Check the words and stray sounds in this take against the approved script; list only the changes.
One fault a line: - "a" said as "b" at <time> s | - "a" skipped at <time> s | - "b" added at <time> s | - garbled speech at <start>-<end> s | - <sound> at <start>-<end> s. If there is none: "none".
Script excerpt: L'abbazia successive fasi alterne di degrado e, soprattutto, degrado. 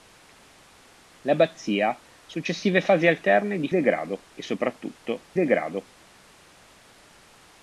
none